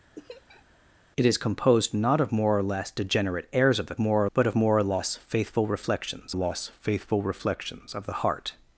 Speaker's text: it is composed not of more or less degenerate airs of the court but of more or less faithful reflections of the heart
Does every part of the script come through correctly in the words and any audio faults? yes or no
no